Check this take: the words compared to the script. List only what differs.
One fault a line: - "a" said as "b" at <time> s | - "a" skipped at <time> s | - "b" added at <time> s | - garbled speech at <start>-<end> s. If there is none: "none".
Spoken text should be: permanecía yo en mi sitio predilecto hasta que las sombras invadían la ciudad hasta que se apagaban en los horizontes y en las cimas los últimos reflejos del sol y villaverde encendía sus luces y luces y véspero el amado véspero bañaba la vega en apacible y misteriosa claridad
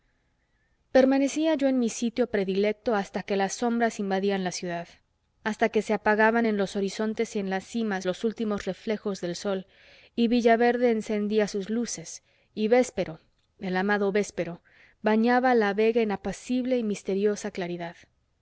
- "luces y" skipped at 12.7 s